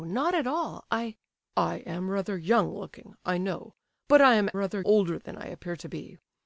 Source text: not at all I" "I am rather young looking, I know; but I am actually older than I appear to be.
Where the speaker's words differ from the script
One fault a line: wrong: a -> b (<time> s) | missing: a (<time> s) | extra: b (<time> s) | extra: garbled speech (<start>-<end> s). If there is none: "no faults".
wrong: actually -> rather (4.5 s)